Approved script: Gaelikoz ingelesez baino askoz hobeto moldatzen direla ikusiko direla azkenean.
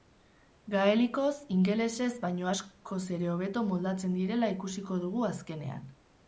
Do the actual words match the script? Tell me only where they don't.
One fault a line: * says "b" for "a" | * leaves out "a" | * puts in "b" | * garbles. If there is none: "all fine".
* puts in "ere"
* says "dugu" for "direla"